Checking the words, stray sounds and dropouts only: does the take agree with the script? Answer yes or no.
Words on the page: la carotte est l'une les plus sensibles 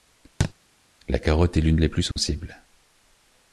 no